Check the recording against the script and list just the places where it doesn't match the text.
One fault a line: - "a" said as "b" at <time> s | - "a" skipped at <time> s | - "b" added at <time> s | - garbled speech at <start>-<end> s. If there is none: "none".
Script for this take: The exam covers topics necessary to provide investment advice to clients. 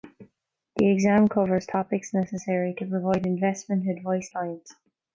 - "to" skipped at 4.3 s